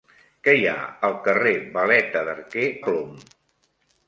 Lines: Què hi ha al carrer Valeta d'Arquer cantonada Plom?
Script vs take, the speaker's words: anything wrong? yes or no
yes